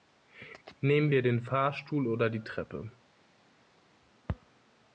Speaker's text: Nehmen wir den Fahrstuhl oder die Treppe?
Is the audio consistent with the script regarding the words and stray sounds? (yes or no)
yes